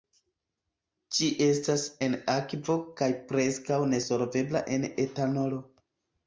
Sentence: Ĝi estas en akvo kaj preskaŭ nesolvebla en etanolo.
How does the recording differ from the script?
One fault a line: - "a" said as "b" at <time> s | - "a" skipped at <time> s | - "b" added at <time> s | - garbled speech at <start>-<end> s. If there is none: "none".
none